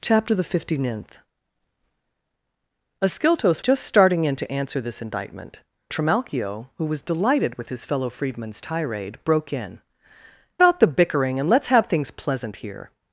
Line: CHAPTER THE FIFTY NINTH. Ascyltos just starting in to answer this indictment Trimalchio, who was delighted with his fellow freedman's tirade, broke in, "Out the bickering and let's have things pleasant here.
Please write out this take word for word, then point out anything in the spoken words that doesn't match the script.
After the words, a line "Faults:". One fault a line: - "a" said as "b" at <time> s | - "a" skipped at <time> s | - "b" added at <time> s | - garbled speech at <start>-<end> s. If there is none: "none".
CHAPTER THE FIFTY NINTH. Ascyltos just starting in to answer this indictment Trimalchio, who was delighted with his fellow freedman's tirade, broke in, "Out the bickering and let's have things pleasant here.
Faults:
none